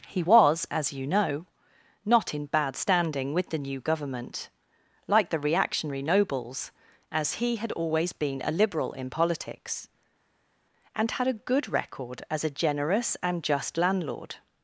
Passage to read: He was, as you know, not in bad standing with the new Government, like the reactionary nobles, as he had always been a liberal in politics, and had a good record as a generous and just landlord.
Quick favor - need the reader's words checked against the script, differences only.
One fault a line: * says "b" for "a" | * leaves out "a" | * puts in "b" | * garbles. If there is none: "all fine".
all fine